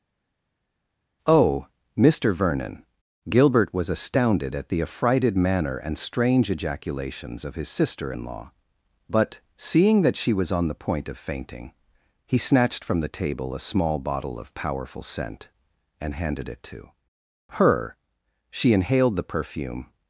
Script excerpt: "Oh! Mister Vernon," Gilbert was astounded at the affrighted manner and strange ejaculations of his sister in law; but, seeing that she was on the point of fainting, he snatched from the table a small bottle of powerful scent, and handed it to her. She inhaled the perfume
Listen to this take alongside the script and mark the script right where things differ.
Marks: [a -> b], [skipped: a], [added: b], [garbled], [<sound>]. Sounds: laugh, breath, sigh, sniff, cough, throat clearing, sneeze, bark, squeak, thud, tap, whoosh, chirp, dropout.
"Oh! Mister Vernon," Gilbert was astounded at the affrighted manner and strange ejaculations of his sister in law; but, seeing that she was on the point of fainting, he snatched from the table a small bottle of powerful scent, and handed it to her. She inhaled the perfume